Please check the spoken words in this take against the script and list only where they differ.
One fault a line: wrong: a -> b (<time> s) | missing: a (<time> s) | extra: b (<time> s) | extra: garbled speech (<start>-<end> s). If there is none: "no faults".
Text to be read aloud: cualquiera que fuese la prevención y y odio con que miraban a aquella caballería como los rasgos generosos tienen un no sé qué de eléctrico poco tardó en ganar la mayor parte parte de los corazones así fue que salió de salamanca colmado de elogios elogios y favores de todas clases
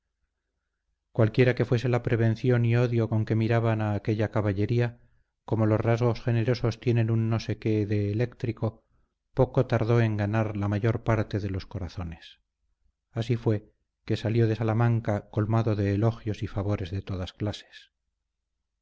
missing: y (2.8 s)
missing: parte (11.4 s)
missing: elogios (16.4 s)